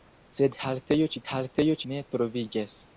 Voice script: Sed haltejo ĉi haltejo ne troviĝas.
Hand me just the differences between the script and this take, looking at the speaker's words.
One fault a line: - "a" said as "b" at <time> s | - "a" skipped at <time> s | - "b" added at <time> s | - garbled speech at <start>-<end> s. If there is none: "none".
none